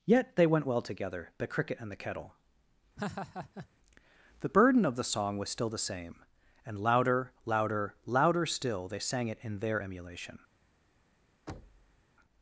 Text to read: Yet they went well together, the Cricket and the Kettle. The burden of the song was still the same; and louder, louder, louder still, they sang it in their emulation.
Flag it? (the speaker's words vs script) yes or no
no